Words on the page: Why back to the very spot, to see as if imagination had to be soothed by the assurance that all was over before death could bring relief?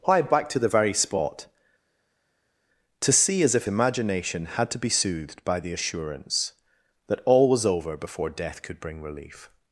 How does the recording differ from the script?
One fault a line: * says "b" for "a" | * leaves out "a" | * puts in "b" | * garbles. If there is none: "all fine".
all fine